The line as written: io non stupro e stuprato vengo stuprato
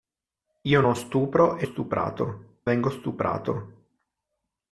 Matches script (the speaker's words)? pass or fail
pass